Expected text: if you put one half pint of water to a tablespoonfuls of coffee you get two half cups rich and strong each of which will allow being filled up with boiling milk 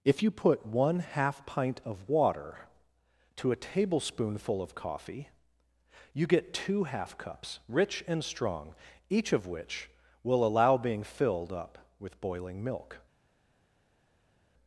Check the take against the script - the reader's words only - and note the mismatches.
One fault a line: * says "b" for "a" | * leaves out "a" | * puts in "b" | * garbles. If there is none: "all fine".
* says "tablespoonful" for "tablespoonfuls"